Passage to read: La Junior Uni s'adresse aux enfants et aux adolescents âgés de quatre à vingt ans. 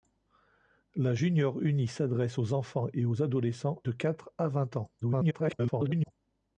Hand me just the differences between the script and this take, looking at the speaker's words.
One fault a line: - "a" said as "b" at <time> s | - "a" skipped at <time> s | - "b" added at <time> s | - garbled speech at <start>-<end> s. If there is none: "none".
- "âgés" skipped at 3.8 s
- garbled speech at 5.0-6.1 s